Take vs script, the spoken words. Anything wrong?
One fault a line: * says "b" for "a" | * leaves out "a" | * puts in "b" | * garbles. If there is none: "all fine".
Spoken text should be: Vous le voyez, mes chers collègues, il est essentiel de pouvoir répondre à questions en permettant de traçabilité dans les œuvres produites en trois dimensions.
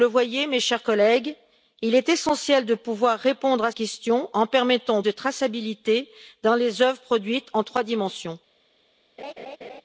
all fine